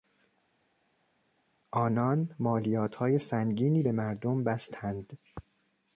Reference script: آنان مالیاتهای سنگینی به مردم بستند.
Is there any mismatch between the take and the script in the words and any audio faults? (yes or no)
no